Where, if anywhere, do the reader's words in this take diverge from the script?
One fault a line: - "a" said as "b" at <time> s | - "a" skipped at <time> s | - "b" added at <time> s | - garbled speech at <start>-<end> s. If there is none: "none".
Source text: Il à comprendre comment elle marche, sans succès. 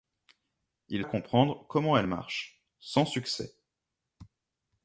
none